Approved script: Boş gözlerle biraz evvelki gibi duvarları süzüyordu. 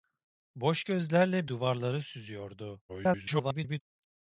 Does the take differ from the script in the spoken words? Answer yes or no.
yes